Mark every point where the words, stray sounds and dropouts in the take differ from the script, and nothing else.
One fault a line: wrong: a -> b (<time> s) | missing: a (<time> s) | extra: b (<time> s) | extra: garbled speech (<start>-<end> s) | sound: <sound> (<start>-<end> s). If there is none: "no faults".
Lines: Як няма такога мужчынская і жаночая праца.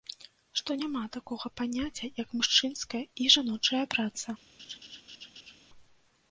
wrong: Як -> Што (0.6 s)
extra: паняцця як (1.6 s)
sound: laugh (4.6-5.6 s)